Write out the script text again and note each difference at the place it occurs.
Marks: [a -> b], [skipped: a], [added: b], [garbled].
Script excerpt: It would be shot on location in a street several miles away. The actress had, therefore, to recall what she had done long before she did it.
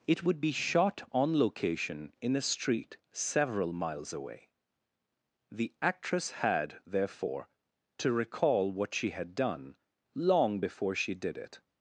It would be shot on location in a street several miles away. The actress had, therefore, to recall what she had done long before she did it.